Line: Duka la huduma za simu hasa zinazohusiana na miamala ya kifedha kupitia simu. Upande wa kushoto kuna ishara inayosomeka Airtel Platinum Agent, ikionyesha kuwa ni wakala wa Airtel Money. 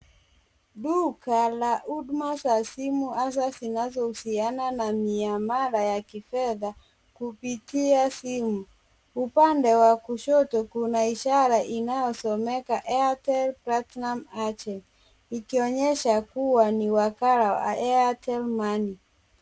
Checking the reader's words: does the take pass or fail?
pass